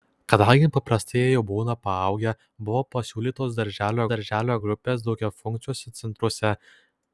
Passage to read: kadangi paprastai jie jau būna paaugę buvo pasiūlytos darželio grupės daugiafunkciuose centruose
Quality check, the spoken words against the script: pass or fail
fail